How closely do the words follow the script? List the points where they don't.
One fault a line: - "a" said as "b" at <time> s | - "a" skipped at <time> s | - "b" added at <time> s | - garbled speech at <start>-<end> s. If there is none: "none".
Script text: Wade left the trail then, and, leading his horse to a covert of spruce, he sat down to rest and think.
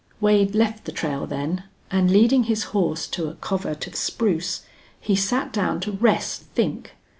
- "and" skipped at 6.4 s